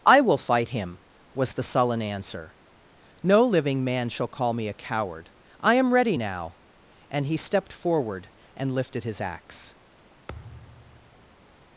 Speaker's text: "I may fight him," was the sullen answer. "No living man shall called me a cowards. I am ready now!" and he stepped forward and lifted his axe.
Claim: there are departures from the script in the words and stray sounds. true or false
true